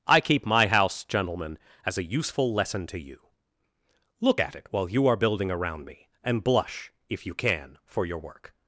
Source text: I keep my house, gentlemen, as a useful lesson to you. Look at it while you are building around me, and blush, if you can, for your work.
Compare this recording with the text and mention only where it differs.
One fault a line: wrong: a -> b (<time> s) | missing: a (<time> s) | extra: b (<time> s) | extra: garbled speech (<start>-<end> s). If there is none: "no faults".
no faults